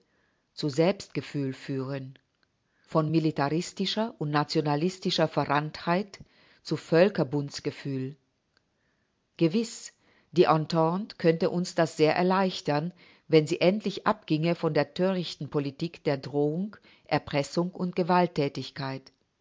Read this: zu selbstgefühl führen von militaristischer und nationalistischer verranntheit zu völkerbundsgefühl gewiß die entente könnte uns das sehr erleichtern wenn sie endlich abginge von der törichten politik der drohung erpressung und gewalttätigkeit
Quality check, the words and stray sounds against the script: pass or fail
pass